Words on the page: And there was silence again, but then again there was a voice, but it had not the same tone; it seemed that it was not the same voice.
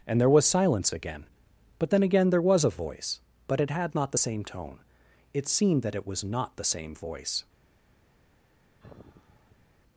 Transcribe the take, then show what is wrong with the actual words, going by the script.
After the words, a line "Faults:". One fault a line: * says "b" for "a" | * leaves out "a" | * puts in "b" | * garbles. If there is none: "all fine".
And there was silence again, but then again there was a voice, but it had not the same tone; it seemed that it was not the same voice.
Faults:
all fine